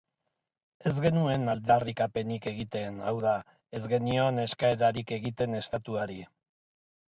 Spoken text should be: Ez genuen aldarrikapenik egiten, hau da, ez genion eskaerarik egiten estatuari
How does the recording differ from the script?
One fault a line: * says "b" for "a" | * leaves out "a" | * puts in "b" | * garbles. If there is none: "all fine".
all fine